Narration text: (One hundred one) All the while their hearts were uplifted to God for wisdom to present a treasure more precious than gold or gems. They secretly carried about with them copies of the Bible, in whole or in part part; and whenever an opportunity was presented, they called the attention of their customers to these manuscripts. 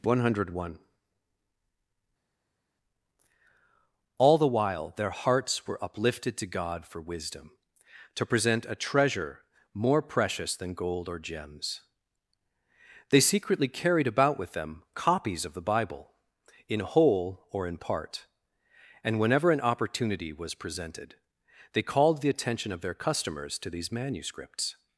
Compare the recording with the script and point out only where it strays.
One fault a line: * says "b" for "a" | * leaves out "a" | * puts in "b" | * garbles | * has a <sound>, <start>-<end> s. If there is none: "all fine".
* leaves out "part"